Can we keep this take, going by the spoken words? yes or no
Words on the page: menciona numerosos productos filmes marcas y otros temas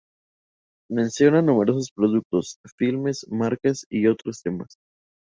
yes